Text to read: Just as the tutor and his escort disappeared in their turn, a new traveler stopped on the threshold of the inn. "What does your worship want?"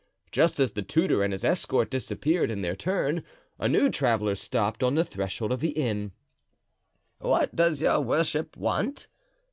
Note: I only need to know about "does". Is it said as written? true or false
true